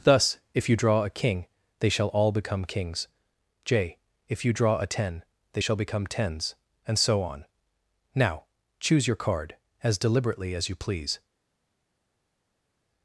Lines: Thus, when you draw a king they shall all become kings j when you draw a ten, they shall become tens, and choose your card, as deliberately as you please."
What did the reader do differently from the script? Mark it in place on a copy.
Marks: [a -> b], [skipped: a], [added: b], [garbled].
Thus, [when -> if] you draw a king they shall all become kings j [when -> if] you draw a ten, they shall become tens, and [added: so on Now] choose your card, as deliberately as you please."